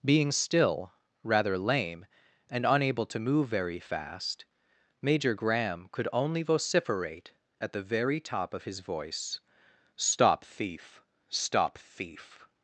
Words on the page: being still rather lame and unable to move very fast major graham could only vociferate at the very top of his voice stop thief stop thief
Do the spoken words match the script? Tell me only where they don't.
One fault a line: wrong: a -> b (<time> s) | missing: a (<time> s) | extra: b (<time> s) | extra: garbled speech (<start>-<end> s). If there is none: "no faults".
no faults